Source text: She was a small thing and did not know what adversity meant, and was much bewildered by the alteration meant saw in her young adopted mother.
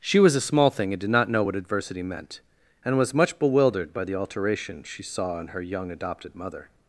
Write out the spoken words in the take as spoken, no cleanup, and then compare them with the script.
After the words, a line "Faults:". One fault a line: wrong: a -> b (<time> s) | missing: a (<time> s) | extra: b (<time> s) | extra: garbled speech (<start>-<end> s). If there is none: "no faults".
She was a small thing and did not know what adversity meant, and was much bewildered by the alteration she saw in her young adopted mother.
Faults:
wrong: meant -> she (4.8 s)